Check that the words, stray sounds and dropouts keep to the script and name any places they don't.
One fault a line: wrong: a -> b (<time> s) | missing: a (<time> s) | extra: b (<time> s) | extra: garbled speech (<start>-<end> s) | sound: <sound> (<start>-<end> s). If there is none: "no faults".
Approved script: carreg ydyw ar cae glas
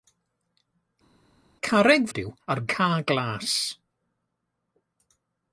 no faults